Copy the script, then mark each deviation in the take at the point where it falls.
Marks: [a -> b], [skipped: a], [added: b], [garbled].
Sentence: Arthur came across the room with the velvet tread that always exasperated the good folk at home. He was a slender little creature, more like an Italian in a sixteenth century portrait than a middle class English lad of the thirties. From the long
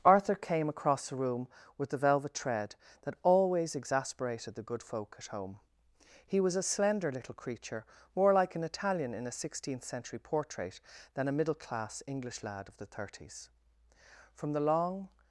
Arthur came across the room with the velvet tread that always exasperated the good folk at home. He was a slender little creature, more like an Italian in a sixteenth century portrait than a middle class English lad of the thirties. From the long